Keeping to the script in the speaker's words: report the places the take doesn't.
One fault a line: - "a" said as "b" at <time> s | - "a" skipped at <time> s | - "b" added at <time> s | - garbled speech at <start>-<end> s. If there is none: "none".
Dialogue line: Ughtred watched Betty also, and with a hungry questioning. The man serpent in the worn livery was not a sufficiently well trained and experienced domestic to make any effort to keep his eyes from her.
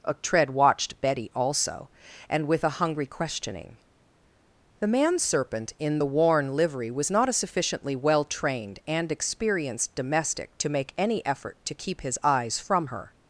none